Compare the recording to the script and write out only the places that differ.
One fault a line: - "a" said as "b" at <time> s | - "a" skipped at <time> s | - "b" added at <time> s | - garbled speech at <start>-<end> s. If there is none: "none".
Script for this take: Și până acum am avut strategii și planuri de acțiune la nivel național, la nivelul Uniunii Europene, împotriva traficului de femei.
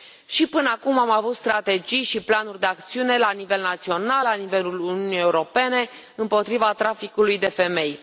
none